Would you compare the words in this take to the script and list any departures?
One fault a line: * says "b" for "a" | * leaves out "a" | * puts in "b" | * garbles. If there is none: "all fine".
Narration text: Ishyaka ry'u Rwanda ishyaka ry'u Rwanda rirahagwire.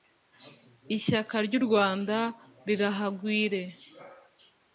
* leaves out "ishyaka ry'u Rwanda"